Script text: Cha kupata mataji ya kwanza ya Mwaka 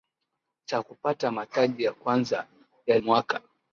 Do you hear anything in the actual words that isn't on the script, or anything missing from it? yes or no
no